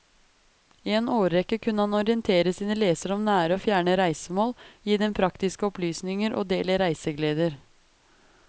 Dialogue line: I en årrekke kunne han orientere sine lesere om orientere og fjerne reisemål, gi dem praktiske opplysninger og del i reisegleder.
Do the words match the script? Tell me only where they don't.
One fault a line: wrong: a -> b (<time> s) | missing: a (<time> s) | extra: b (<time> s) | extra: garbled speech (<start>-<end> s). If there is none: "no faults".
wrong: orientere -> nære (3.3 s)